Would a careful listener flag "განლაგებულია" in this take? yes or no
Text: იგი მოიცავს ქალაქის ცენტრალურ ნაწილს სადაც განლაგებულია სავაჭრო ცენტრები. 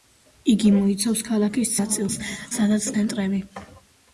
yes